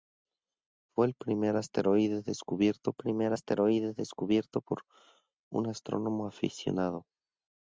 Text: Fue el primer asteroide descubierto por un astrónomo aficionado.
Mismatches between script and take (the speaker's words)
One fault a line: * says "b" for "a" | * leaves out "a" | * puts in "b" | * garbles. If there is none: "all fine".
* puts in "primer asteroide descubierto"